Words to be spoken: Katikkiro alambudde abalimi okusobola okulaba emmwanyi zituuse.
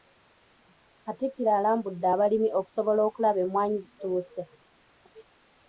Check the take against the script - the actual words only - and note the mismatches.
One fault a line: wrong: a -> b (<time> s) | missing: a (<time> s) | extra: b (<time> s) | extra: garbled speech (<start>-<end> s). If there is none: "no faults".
no faults